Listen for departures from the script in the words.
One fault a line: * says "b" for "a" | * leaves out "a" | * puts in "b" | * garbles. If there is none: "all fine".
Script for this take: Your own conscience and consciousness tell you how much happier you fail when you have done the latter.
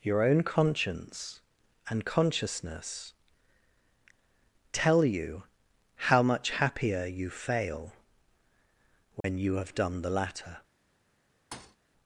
all fine